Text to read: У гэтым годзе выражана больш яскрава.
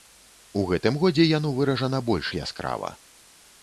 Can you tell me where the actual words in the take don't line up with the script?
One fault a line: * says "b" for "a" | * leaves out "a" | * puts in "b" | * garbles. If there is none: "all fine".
* puts in "яно"